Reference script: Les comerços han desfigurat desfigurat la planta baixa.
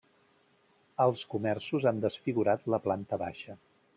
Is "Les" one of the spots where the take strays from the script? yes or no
yes